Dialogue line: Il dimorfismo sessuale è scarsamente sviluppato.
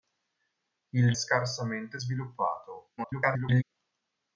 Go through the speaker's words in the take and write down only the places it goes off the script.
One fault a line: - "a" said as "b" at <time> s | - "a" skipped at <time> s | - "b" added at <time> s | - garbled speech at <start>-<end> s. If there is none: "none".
- "dimorfismo sessuale è" skipped at 1.1 s
- garbled speech at 3.0-3.6 s